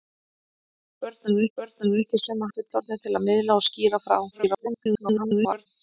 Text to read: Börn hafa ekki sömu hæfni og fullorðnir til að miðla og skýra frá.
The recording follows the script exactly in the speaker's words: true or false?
false